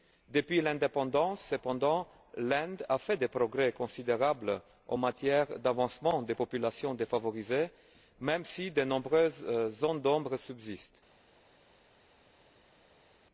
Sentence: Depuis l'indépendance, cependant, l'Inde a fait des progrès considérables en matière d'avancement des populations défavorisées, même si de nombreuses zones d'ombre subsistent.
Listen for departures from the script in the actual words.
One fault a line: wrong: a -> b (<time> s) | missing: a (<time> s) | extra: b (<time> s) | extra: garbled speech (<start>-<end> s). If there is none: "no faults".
no faults